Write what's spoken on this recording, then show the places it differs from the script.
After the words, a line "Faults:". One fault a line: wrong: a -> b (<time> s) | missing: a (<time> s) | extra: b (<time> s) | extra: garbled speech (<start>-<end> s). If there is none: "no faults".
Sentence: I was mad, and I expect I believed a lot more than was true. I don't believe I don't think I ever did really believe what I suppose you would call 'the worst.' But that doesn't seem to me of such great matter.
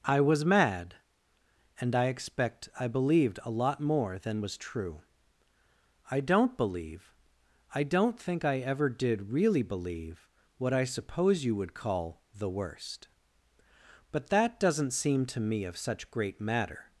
I was mad, and I expect I believed a lot more than was true. I don't believe I don't think I ever did really believe what I suppose you would call 'the worst.' But that doesn't seem to me of such great matter.
Faults:
no faults